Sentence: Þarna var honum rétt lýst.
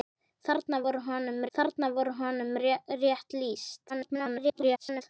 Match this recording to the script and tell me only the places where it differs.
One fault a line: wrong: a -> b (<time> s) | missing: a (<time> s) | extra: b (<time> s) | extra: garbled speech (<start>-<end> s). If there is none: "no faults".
extra: þarna var honum (1.6 s)
extra: garbled speech (3.9-5.0 s)